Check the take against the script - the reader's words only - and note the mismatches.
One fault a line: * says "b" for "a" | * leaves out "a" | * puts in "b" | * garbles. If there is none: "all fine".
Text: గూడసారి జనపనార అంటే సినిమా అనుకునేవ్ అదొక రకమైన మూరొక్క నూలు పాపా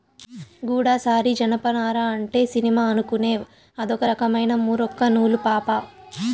all fine